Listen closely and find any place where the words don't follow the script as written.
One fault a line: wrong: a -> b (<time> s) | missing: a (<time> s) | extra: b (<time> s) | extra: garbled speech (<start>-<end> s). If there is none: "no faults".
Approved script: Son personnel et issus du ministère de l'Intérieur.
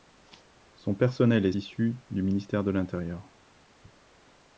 no faults